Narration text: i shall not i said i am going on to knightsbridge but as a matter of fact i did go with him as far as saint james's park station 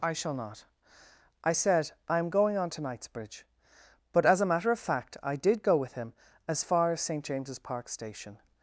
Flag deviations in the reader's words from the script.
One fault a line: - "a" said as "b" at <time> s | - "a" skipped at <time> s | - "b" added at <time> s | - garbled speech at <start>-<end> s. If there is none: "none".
none